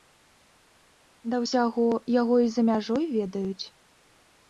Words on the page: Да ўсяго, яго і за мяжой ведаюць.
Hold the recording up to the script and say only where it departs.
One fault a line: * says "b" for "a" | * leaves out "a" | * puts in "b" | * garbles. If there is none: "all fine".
all fine